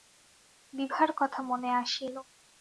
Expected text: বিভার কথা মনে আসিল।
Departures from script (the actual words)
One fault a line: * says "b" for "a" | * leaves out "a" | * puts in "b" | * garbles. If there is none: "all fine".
all fine